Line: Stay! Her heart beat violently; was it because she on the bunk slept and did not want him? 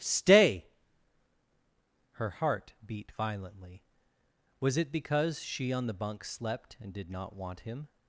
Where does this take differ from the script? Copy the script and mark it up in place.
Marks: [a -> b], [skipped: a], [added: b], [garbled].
Stay! Her heart beat violently; was it because she on the bunk slept and did not want him?